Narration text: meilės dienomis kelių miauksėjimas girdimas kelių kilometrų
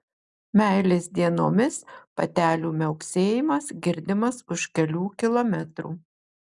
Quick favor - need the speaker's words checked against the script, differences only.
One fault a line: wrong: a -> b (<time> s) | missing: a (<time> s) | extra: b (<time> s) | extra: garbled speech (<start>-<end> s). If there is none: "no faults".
wrong: kelių -> patelių (2.2 s)
extra: už (4.6 s)